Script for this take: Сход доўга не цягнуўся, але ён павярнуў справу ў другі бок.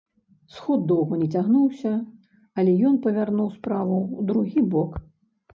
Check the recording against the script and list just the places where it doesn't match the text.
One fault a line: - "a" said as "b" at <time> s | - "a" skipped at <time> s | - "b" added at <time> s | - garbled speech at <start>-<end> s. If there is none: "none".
none